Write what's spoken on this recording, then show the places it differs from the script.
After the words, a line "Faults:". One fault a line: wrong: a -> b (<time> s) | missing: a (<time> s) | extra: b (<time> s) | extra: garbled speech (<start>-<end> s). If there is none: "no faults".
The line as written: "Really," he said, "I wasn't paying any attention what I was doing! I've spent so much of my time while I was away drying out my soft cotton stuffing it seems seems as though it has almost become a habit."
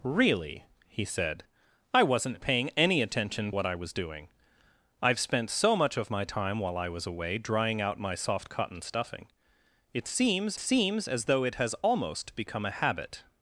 "Really," he said, "I wasn't paying any attention what I was doing! I've spent so much of my time while I was away drying out my soft cotton stuffing it seems seems as though it has almost become a habit."
Faults:
no faults